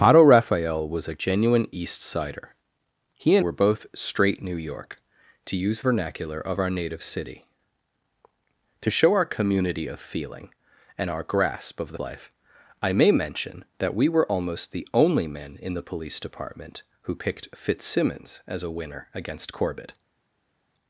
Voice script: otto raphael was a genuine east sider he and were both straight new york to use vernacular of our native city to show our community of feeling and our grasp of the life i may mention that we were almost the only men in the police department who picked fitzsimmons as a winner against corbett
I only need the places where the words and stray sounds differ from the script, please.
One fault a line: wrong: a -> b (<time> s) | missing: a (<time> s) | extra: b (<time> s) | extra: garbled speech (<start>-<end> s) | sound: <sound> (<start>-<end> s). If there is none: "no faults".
no faults